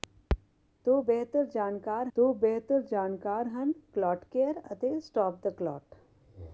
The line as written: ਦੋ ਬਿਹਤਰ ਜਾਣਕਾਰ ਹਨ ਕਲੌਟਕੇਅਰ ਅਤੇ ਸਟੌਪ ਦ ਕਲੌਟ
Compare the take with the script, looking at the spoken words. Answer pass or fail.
fail